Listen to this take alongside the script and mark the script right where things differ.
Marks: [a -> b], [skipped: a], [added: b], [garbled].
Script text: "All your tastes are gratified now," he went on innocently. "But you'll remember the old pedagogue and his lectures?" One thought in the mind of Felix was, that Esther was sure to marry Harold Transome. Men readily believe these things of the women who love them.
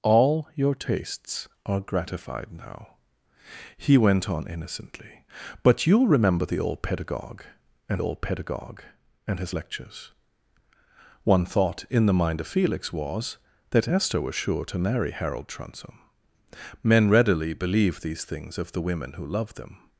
"All your tastes are gratified now," he went on innocently. "But you'll remember the old pedagogue and [added: old pedagogue and] his lectures?" One thought in the mind of Felix was, that Esther was sure to marry Harold Transome. Men readily believe these things of the women who love them.